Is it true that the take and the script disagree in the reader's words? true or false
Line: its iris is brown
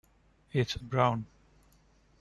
true